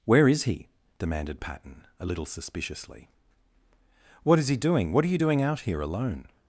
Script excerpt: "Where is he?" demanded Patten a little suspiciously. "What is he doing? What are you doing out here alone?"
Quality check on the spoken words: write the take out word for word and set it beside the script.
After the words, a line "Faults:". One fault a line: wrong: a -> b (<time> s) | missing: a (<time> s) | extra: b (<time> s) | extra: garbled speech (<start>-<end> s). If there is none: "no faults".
"Where is he?" demanded Patten a little suspiciously. "What is he doing? What are you doing out here alone?"
Faults:
no faults